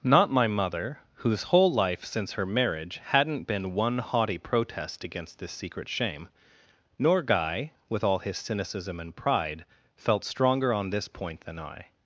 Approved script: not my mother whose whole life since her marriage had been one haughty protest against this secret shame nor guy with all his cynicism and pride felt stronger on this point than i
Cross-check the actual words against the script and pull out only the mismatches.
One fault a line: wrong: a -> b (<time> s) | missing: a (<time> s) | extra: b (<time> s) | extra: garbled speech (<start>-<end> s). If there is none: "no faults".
wrong: had -> hadn't (3.0 s)